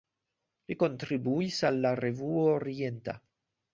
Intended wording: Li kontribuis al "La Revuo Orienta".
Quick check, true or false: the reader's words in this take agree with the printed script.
true